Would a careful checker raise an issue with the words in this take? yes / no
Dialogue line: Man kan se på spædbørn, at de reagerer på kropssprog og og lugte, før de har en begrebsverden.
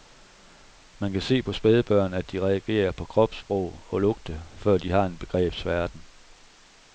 yes